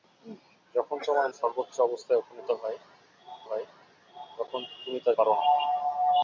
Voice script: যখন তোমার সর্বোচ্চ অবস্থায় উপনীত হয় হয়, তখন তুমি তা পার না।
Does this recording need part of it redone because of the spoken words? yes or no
no